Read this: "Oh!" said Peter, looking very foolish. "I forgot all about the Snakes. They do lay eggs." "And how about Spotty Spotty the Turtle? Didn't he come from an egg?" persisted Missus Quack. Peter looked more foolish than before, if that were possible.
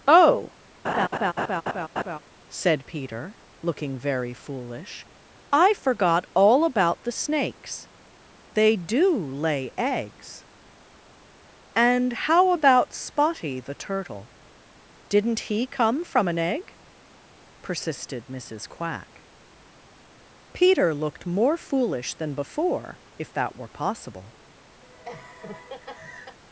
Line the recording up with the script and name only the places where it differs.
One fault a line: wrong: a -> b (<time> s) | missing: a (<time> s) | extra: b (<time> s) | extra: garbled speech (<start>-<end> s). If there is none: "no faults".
missing: Spotty (13.6 s)